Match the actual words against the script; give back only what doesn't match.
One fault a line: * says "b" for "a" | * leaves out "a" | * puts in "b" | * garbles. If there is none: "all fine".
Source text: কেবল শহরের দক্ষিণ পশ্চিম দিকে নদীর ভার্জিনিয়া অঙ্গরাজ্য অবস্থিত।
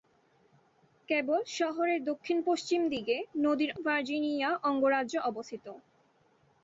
all fine